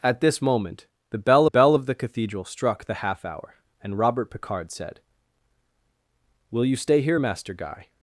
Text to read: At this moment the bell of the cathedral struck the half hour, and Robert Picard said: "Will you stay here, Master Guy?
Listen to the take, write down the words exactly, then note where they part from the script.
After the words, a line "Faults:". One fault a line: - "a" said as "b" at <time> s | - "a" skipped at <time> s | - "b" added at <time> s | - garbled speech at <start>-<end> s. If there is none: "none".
At this moment the bell bell of the cathedral struck the half hour, and Robert Picard said: "Will you stay here, Master Guy?
Faults:
- "bell" added at 1.4 s